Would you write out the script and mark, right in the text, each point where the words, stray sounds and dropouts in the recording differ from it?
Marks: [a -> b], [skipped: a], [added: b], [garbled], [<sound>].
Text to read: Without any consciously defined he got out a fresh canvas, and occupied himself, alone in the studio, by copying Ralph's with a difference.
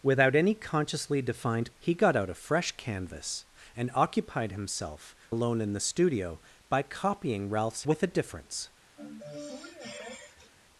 Without any consciously defined he got out a fresh canvas, and occupied himself, alone in the studio, by copying Ralph's with a difference. [sniff]